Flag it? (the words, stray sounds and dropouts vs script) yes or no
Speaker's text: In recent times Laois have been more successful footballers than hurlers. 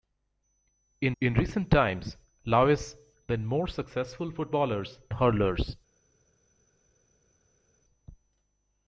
yes